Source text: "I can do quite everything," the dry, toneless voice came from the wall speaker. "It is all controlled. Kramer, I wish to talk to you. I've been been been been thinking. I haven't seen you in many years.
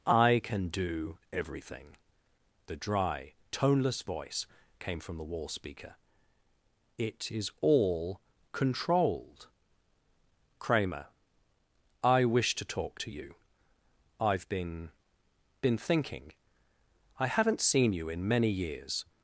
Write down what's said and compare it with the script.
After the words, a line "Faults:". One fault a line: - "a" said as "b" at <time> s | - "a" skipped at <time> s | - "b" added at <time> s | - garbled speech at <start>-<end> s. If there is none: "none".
"I can do everything," the dry, toneless voice came from the wall speaker. "It is all controlled. Kramer, I wish to talk to you. I've been been thinking. I haven't seen you in many years.
Faults:
- "quite" skipped at 1.2 s
- "been been" skipped at 15.8 s